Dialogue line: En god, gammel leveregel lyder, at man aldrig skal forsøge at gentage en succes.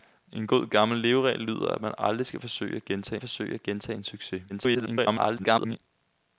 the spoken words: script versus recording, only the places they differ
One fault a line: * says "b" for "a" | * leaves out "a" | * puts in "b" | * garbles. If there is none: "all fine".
* puts in "forsøge at gentage"
* garbles